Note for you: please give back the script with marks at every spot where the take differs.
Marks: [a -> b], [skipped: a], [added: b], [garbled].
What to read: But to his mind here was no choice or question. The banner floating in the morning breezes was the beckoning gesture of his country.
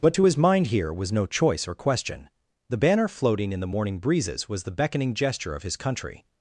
But to his mind here was no choice or question. The banner floating in the morning breezes was the beckoning gesture of his country.